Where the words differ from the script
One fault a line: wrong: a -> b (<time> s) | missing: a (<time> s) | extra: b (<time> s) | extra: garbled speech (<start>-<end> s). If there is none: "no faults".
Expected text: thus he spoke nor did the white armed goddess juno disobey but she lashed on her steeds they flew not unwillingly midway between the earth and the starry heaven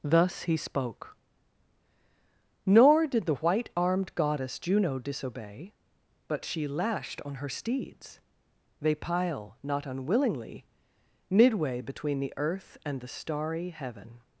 wrong: flew -> pile (8.9 s)